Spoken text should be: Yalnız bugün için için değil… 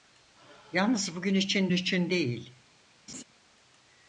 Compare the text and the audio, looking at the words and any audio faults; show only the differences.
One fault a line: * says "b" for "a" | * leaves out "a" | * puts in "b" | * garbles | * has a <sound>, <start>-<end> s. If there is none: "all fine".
* has a laugh, 3.1-3.2 s